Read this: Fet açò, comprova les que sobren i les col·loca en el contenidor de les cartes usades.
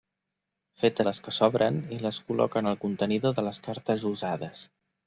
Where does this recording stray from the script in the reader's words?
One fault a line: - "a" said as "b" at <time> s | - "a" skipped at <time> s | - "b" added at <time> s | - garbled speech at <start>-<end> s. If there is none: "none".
- "açò comprova" skipped at 1.0 s